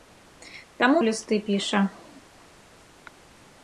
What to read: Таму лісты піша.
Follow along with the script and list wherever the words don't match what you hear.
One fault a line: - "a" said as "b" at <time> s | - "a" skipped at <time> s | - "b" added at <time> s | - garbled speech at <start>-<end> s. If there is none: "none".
none